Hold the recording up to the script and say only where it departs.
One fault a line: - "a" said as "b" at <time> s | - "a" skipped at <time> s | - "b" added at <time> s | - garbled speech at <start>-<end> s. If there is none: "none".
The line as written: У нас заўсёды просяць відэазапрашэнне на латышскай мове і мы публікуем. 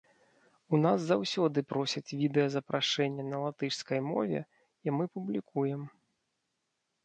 none